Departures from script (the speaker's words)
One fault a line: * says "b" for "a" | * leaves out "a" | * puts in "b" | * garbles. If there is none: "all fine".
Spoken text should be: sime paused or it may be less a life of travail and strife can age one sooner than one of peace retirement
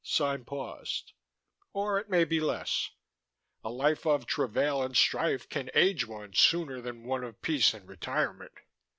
* puts in "and"